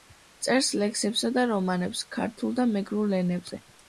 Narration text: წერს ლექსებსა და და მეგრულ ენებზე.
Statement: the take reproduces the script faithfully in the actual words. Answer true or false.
false